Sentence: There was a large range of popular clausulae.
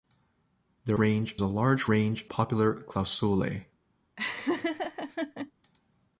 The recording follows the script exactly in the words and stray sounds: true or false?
false